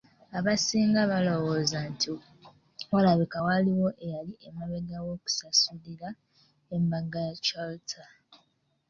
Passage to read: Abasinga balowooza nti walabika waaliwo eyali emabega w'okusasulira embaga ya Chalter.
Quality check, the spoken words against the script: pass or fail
pass